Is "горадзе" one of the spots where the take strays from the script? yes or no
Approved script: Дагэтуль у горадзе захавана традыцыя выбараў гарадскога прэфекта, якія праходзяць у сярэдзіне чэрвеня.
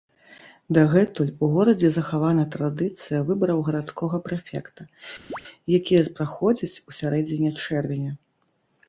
no